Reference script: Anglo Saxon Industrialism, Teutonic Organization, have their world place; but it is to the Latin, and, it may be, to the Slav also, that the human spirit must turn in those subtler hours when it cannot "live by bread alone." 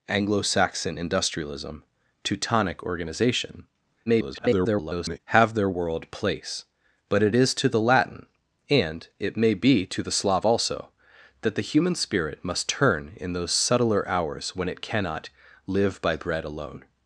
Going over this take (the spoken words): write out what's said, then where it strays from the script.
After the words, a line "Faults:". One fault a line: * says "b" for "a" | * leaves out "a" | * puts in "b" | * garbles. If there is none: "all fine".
Anglo Saxon Industrialism, Teutonic Organization, [garbled] have their world place; but it is to the Latin, and, it may be, to the Slav also, that the human spirit must turn in those subtler hours when it cannot "live by bread alone."
Faults:
* garbles